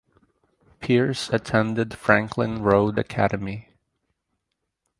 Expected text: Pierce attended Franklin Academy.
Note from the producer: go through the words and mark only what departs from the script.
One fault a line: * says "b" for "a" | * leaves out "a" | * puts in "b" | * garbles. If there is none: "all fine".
* puts in "Road"